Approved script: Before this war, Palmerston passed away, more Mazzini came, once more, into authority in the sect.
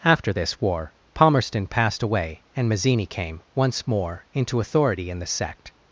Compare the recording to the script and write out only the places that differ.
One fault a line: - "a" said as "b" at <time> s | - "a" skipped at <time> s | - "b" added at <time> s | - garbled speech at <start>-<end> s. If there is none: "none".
- "Before" said as "After" at 0.0 s
- "more" said as "and" at 2.5 s